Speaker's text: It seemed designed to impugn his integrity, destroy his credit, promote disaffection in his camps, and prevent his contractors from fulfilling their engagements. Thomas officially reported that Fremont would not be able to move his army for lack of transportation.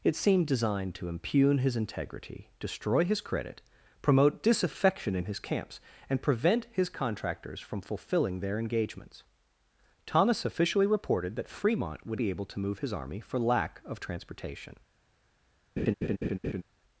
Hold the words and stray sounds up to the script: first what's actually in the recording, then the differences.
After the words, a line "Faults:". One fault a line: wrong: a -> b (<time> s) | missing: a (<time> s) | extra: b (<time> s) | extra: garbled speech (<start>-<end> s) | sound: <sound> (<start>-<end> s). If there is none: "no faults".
It seemed designed to impugn his integrity, destroy his credit, promote disaffection in his camps, and prevent his contractors from fulfilling their engagements. Thomas officially reported that Fremont would be able to move his army for lack of transportation.
Faults:
missing: not (12.2 s)
sound: laugh (15.8-16.6 s)